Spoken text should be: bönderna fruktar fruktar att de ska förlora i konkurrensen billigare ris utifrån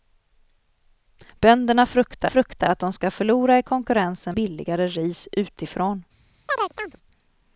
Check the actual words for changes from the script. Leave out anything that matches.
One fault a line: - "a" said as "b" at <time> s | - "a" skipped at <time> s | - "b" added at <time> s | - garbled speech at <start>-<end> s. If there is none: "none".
none